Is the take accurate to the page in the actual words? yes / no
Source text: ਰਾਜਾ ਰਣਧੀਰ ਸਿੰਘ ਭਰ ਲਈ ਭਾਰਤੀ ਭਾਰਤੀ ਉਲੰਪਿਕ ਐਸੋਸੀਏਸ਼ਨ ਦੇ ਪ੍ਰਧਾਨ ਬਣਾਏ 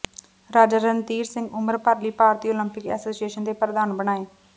no